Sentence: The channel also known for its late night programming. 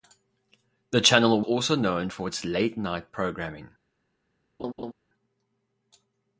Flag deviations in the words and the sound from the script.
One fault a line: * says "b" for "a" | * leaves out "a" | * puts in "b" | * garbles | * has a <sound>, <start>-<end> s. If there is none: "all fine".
* has a laugh, 4.6-4.9 s